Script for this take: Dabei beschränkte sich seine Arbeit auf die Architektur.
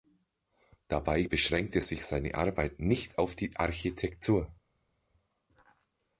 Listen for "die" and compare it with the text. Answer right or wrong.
right